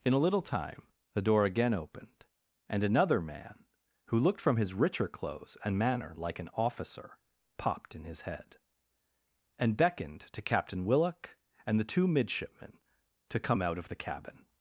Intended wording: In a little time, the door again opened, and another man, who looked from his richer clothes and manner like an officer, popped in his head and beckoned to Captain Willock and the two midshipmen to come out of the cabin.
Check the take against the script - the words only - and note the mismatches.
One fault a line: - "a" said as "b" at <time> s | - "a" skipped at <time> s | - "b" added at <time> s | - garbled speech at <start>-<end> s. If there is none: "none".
none